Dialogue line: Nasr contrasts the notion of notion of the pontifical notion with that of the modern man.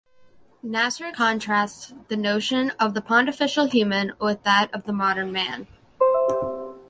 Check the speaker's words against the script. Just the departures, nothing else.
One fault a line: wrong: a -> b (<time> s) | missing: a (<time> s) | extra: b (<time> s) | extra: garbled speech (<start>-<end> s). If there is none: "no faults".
missing: notion of (2.9 s)
wrong: notion -> human (3.7 s)